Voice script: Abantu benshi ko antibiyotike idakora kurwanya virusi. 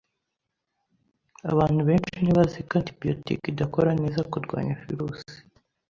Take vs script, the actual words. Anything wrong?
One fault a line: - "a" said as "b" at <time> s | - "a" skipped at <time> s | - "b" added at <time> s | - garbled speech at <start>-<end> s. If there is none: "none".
- "ntibazi" added at 2.2 s
- "neza" added at 4.0 s